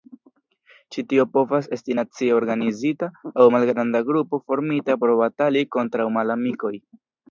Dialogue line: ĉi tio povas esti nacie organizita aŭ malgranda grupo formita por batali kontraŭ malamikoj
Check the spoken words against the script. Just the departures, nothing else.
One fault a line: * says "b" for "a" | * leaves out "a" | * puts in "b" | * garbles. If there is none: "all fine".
all fine